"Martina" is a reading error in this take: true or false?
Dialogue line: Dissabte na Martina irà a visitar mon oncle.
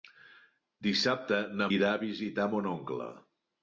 true